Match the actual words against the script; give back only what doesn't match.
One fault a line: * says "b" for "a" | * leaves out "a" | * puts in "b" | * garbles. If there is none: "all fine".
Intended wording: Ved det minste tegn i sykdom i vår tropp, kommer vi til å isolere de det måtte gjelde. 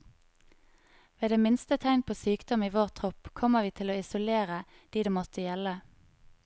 * says "på" for "i"